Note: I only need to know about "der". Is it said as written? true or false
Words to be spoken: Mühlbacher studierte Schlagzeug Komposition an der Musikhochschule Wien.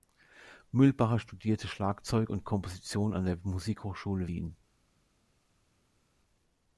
true